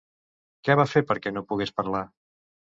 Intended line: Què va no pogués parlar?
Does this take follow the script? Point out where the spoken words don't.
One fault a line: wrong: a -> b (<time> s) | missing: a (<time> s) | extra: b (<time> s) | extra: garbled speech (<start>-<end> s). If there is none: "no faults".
extra: fer perquè (0.9 s)